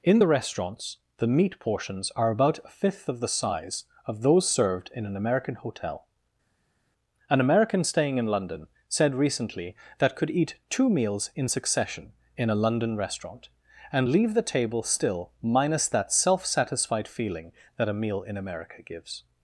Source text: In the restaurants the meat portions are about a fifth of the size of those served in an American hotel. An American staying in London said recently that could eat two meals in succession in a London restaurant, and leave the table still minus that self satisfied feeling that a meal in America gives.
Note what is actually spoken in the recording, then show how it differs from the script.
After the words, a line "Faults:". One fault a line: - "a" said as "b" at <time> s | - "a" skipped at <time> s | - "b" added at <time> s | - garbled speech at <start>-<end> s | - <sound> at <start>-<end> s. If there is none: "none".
In the restaurants the meat portions are about a fifth of the size of those served in an American hotel. An American staying in London said recently that could eat two meals in succession in a London restaurant, and leave the table still minus that self satisfied feeling that a meal in America gives.
Faults:
none